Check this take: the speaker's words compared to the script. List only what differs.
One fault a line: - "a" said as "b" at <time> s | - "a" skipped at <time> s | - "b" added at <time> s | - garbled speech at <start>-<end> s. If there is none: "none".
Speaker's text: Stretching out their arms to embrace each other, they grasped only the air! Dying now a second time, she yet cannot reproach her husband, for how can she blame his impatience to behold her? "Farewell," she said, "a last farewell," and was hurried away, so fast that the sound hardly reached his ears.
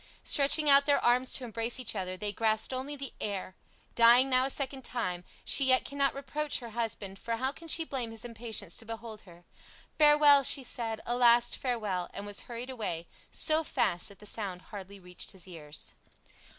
none